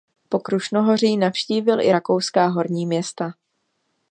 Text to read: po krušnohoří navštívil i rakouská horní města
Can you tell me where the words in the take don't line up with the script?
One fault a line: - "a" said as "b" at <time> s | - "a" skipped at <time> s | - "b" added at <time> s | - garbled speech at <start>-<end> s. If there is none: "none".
none